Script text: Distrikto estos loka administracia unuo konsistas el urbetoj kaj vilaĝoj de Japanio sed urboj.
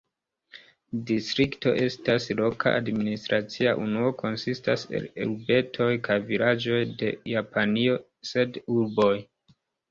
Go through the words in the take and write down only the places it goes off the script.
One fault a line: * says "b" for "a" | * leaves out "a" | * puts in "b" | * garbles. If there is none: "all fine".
* says "estas" for "estos"